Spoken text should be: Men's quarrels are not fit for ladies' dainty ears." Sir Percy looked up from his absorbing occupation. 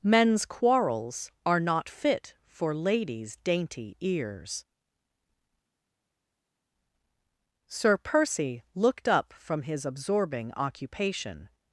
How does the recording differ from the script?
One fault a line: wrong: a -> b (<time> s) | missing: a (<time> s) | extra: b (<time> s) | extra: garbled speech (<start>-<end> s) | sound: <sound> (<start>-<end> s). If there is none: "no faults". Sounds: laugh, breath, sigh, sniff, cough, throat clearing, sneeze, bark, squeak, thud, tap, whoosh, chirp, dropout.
no faults